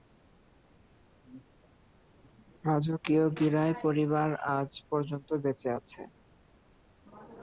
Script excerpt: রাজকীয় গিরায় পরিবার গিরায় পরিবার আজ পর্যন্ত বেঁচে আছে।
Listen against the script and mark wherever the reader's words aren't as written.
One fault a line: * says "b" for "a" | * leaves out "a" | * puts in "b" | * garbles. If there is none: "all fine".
* leaves out "গিরায় পরিবার"